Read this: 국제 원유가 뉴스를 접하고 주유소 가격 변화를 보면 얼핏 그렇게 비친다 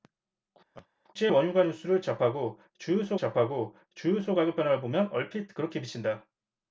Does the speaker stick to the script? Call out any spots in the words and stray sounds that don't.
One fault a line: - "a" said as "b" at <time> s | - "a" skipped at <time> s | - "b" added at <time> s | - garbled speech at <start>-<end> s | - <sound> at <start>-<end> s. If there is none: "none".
- laugh at 0.7-0.9 s
- "접하고 주유소" added at 3.2 s